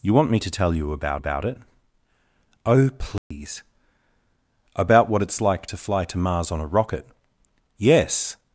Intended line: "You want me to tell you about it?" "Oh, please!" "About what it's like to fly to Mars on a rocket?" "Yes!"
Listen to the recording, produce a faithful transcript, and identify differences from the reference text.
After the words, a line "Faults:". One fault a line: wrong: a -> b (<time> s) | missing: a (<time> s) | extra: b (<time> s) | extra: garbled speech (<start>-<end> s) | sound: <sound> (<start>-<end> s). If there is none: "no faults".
"You want me to tell you about about it?" "Oh, please!" "About what it's like to fly to Mars on a rocket?" "Yes!"
Faults:
extra: about (1.2 s)
sound: dropout (3.2-3.3 s)